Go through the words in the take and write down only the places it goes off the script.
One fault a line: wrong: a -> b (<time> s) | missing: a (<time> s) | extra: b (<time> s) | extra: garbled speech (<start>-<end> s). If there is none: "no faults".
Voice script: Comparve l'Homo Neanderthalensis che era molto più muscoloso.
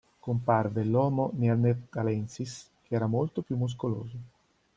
no faults